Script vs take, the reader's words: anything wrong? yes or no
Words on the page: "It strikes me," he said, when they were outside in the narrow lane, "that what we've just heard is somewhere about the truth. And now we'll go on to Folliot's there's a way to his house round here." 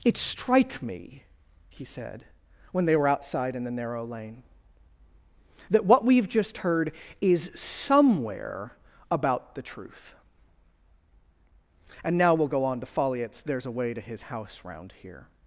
yes